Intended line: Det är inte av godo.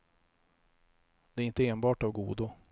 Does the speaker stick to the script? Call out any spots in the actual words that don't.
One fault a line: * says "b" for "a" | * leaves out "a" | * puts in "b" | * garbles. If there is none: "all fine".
* puts in "enbart"